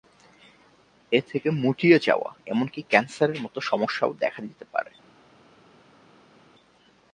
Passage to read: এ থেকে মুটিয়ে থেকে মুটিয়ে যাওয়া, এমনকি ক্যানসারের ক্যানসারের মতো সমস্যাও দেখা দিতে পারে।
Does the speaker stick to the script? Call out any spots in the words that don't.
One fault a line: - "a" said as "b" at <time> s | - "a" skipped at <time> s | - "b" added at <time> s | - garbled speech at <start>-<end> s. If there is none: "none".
- "থেকে মুটিয়ে" skipped at 2.0 s
- "ক্যানসারের" skipped at 3.4 s